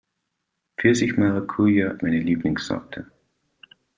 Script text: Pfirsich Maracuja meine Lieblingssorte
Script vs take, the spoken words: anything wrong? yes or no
no